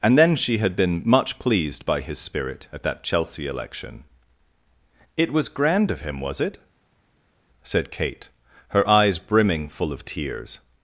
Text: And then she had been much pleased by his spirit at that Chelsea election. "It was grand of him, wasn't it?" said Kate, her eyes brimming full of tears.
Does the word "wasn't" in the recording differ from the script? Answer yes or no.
yes